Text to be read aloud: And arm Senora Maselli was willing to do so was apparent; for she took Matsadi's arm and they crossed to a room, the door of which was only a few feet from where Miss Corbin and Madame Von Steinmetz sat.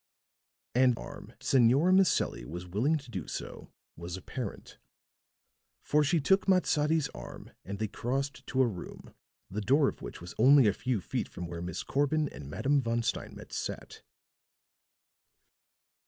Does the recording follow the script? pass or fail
pass